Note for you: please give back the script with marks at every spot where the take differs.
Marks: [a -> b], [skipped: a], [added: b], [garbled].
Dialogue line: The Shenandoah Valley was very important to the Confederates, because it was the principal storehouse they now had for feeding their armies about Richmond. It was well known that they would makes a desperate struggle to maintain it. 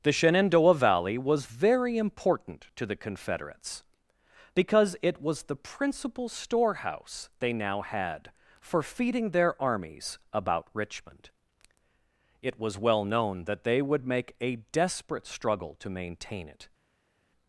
The Shenandoah Valley was very important to the Confederates, because it was the principal storehouse they now had for feeding their armies about Richmond. It was well known that they would [makes -> make] a desperate struggle to maintain it.